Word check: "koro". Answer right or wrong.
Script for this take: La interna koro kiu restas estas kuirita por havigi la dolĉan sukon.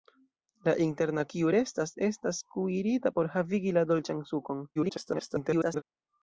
wrong